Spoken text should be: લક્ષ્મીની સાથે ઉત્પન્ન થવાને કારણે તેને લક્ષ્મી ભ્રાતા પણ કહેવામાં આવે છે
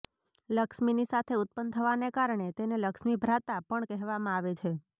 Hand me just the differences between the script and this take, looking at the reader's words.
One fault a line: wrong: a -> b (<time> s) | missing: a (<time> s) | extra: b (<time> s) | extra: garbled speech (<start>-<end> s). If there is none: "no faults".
no faults